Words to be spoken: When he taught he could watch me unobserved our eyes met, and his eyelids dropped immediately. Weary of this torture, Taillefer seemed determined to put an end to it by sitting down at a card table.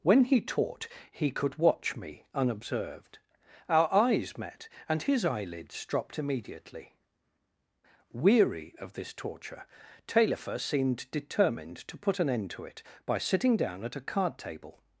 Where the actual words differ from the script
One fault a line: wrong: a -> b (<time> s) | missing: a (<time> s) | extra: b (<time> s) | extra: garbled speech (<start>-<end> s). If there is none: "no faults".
no faults